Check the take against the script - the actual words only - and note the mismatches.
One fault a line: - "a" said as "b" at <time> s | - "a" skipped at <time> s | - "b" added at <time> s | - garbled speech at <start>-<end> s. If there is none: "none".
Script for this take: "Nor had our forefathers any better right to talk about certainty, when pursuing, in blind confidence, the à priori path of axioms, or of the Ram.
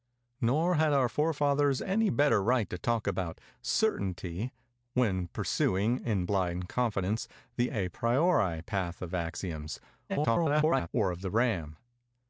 - garbled speech at 10.1-10.9 s